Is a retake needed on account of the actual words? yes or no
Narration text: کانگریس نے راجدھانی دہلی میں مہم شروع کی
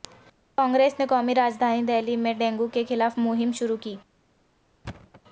yes